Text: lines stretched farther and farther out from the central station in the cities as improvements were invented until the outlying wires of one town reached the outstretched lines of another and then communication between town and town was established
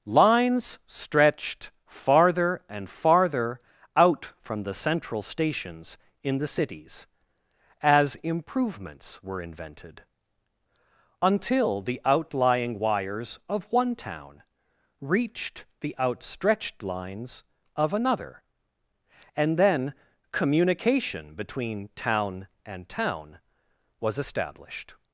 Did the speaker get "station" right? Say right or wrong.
wrong